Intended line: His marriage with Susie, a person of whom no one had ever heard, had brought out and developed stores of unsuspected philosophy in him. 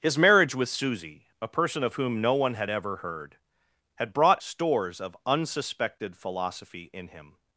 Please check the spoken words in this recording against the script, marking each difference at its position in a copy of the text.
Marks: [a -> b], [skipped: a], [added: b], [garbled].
His marriage with Susie, a person of whom no one had ever heard, had brought [skipped: out and developed] stores of unsuspected philosophy in him.